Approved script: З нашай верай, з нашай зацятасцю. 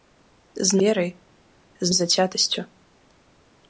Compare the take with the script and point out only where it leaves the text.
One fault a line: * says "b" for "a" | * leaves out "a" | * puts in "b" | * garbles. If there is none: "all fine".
* leaves out "нашай"
* leaves out "нашай"